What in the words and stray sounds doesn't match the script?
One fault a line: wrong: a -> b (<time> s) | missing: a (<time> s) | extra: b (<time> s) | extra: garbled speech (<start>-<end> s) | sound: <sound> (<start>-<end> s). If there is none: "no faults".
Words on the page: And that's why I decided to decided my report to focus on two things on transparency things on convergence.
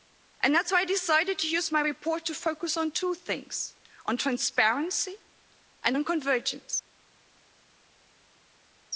wrong: decided -> use (1.5 s)
wrong: things -> and (5.8 s)